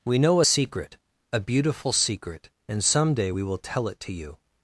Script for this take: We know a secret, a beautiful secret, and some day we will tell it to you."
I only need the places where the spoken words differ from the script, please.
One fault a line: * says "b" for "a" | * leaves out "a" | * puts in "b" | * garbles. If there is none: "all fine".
all fine